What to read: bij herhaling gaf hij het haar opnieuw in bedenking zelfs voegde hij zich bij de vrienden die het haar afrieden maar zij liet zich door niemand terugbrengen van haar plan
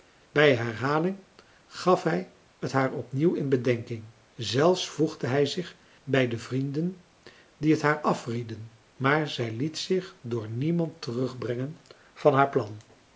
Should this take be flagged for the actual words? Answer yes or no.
no